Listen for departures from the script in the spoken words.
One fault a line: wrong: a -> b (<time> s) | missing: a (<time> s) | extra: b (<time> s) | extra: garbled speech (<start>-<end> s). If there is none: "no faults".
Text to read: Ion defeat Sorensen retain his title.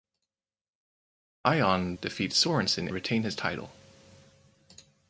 no faults